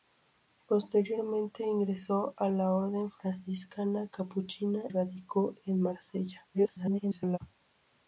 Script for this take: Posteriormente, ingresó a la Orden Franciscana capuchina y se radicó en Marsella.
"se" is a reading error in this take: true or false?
true